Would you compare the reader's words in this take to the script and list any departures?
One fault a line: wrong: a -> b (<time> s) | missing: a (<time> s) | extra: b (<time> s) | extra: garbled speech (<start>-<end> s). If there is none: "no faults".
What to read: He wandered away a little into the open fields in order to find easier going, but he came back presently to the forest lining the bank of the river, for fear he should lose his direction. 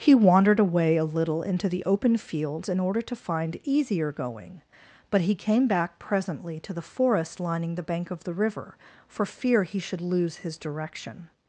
no faults